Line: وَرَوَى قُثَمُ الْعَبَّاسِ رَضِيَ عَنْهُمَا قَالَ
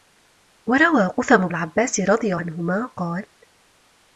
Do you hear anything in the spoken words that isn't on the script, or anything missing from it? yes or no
no